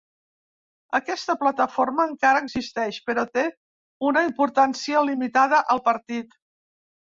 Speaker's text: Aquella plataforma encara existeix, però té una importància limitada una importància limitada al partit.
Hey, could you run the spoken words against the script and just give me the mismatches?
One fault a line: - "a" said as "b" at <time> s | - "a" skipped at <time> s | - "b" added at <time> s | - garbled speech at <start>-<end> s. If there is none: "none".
- "Aquella" said as "Aquesta" at 1.0 s
- "una importància limitada" skipped at 5.6 s